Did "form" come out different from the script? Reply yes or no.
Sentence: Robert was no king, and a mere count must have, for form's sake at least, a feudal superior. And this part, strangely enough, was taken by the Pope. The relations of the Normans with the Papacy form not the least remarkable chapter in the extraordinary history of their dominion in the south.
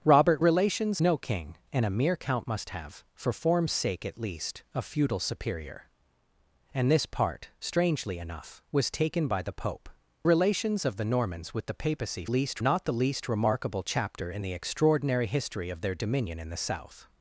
yes